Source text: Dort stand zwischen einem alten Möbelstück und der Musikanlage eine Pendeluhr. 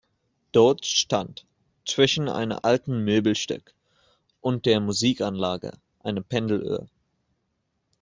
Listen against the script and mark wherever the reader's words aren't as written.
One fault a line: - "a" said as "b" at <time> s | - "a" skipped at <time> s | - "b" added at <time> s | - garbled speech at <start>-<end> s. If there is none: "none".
none